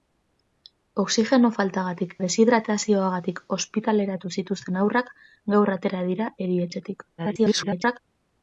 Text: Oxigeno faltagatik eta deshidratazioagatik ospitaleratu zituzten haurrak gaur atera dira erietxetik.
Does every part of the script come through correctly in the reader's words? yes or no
no